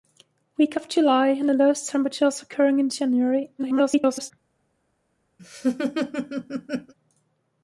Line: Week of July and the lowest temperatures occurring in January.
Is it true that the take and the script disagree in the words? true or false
true